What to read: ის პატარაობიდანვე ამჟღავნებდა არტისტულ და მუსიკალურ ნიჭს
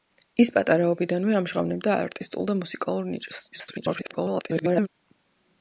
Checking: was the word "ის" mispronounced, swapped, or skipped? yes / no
no